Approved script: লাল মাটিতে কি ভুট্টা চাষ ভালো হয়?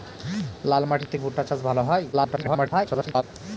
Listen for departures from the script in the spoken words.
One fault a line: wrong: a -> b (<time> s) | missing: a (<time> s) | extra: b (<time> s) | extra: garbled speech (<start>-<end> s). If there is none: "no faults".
missing: কি (1.2 s)
extra: garbled speech (2.1-3.2 s)